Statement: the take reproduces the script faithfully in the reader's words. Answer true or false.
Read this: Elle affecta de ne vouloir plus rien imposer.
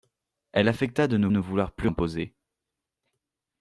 false